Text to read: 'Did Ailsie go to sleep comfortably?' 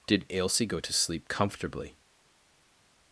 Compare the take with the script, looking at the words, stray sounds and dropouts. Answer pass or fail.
pass